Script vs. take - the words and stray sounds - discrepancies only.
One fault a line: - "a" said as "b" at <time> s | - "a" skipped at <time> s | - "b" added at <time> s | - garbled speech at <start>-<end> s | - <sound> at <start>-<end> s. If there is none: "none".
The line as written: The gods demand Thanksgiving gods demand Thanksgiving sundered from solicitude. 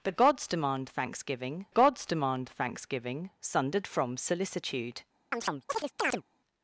- chirp at 5.3-6.2 s